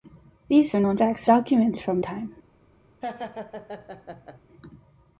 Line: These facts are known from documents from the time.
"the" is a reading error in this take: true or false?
true